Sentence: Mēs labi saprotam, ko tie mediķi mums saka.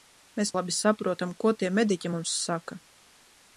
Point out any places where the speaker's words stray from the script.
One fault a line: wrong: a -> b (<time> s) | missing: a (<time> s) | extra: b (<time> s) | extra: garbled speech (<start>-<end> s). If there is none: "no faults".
no faults